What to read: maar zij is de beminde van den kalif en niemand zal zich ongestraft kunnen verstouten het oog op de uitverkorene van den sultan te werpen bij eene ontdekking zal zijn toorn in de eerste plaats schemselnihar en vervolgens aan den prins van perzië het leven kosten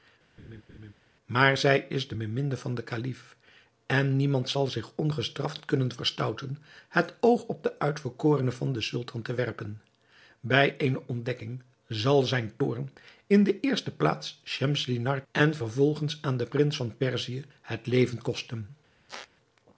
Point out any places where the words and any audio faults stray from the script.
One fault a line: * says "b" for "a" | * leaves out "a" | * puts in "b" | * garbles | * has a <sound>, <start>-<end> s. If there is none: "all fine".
* has a laugh, 0.4-0.9 s
* has a squeak, 19.1-19.3 s